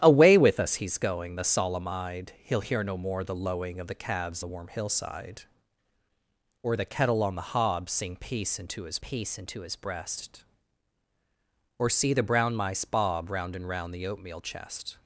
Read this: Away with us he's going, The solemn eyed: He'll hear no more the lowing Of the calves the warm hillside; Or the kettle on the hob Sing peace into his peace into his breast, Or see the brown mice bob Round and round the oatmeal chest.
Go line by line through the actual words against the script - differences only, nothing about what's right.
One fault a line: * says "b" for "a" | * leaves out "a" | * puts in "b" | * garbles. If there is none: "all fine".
all fine